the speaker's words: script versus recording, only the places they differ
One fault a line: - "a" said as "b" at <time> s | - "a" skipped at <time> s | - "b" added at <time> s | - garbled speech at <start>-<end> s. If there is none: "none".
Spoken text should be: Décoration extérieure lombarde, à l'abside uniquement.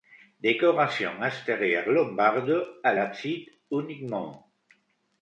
none